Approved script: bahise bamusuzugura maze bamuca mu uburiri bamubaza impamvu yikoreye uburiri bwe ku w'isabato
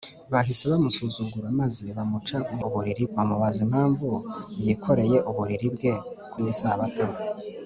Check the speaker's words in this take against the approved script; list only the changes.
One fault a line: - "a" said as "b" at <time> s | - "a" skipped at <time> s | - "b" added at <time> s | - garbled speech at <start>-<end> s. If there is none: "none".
none